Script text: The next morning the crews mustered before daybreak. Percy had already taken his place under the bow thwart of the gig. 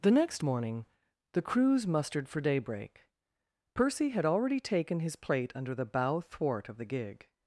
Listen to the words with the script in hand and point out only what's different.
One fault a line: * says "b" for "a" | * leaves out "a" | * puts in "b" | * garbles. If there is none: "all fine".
* says "for" for "before"
* says "plate" for "place"